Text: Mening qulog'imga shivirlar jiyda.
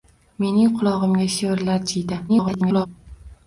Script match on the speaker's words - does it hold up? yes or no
no